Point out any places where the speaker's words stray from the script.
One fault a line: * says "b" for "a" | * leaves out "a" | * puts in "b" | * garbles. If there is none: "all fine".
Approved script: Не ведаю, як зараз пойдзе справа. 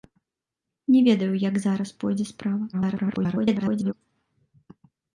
* garbles